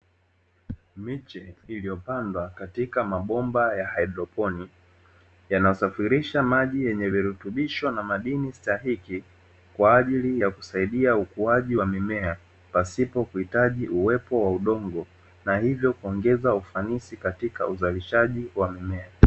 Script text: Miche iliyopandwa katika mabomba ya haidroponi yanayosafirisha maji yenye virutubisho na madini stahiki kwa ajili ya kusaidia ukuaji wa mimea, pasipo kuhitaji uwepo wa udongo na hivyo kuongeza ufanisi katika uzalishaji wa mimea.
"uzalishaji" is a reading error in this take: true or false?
false